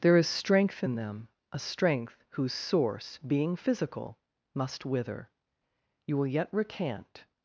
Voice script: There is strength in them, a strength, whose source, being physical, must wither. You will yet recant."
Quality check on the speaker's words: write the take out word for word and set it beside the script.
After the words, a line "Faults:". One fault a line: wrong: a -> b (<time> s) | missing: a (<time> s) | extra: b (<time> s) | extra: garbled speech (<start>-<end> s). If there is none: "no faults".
There is strength in them, a strength, whose source, being physical, must wither. You will yet recant."
Faults:
no faults